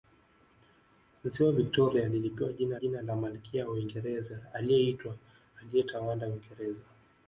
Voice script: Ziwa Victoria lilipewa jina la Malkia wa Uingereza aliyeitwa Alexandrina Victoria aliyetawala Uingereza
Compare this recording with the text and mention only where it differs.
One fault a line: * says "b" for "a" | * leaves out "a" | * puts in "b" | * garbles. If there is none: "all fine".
* puts in "jina"
* leaves out "Alexandrina Victoria"